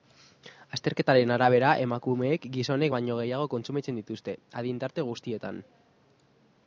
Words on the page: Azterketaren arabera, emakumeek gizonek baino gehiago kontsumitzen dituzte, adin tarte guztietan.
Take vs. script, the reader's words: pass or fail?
pass